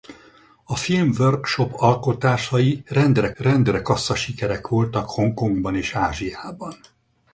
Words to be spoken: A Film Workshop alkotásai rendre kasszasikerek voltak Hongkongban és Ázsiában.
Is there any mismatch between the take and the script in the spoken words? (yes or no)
yes